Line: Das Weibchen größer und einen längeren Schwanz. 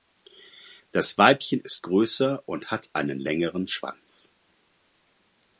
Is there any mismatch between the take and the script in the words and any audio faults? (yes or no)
yes